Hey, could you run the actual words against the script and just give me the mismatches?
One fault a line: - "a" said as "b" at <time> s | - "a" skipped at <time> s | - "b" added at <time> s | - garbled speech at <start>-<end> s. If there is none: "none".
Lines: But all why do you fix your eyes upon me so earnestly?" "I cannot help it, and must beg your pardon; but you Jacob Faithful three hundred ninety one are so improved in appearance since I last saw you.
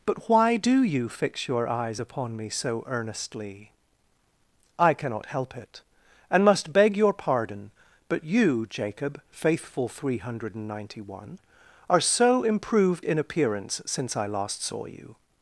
- "all" skipped at 0.3 s